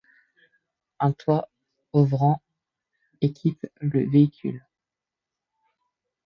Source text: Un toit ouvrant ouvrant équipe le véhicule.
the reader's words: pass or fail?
fail